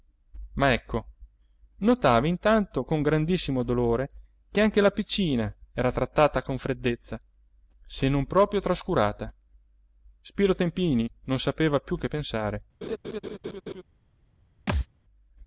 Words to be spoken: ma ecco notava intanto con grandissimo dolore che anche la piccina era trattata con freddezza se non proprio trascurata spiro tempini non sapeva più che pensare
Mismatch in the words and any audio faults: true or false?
true